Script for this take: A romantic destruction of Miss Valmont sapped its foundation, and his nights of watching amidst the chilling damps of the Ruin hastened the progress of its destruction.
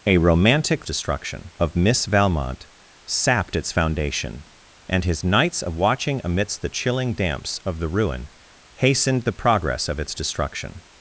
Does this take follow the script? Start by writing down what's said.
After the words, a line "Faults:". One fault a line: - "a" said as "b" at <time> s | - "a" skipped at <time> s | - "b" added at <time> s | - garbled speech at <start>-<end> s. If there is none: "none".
A romantic destruction of Miss Valmont sapped its foundation, and his nights of watching amidst the chilling damps of the Ruin hastened the progress of its destruction.
Faults:
none